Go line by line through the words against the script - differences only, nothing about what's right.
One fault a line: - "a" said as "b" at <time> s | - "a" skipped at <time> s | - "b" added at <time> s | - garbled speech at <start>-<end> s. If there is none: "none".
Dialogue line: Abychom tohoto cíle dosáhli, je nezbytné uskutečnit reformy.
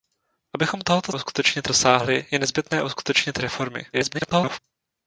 - "cíle" said as "uskutečnit" at 1.1 s
- garbled speech at 3.9-4.6 s